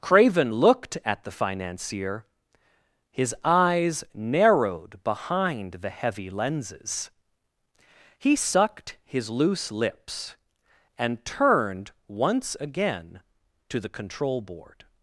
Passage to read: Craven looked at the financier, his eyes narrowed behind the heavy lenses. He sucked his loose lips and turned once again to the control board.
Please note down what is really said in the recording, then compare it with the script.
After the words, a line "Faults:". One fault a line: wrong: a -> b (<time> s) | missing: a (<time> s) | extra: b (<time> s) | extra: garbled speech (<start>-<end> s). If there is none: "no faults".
Craven looked at the financier, his eyes narrowed behind the heavy lenses. He sucked his loose lips and turned once again to the control board.
Faults:
no faults